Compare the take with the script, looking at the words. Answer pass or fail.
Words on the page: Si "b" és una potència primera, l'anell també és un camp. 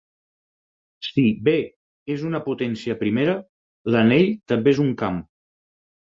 pass